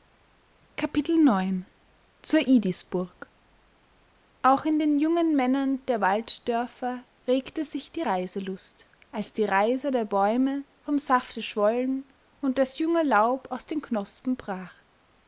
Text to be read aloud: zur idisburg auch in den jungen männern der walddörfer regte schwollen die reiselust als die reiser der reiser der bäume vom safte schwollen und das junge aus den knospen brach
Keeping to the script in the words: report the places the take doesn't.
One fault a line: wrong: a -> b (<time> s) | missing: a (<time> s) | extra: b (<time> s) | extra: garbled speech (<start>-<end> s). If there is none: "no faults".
wrong: schwollen -> sich (7.6 s)
missing: reiser der (10.0 s)
extra: laub (13.0 s)